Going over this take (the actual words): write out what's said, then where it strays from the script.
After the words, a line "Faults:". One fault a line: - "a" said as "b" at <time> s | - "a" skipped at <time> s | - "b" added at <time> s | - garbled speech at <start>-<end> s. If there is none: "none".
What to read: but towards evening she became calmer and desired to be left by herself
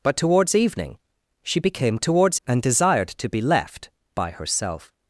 but towards evening she became towards and desired to be left by herself
Faults:
- "calmer" said as "towards" at 2.0 s